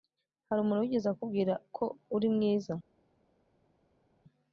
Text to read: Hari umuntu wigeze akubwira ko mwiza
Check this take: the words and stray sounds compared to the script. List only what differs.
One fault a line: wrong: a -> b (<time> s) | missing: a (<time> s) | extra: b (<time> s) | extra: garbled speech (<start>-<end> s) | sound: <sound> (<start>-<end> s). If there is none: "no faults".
extra: uri (2.1 s)